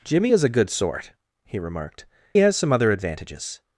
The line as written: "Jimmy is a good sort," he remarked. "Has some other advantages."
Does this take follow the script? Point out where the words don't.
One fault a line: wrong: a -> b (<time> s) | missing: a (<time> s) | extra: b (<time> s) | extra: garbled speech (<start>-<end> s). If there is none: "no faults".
no faults